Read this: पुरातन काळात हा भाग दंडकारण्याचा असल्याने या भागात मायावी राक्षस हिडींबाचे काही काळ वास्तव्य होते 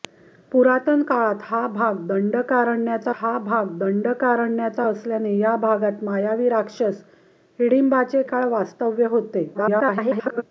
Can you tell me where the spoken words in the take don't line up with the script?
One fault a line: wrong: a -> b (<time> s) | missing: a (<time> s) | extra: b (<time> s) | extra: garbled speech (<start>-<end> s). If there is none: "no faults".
extra: हा भाग दंडकारण्याचा (3.1 s)
missing: काही (8.2 s)
extra: garbled speech (9.5-10.4 s)